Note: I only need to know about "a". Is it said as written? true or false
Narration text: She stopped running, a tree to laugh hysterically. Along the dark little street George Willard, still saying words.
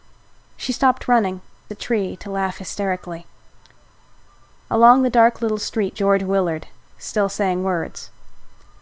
true